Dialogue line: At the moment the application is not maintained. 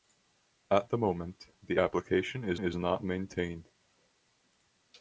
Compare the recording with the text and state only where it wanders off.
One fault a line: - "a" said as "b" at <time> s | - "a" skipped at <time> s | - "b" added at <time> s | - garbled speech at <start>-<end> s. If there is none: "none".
- "is" added at 2.6 s